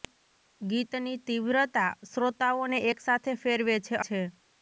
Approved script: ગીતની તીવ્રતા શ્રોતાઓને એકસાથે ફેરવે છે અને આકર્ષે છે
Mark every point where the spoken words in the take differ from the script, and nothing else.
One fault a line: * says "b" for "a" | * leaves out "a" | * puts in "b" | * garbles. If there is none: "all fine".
* leaves out "અને આકર્ષે"